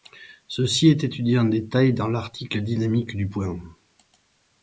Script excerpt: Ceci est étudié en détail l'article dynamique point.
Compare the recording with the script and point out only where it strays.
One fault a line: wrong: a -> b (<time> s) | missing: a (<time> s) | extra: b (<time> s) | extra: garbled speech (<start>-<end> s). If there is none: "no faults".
extra: dans (1.9 s)
extra: du (3.1 s)